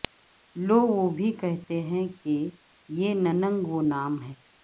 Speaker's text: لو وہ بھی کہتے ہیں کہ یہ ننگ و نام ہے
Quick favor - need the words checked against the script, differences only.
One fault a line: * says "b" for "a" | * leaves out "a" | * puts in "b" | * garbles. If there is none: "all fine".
all fine